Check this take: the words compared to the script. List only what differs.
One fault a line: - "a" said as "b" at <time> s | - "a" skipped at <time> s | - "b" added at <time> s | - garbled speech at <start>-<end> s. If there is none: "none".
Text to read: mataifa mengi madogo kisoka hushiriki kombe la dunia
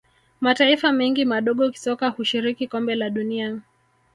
none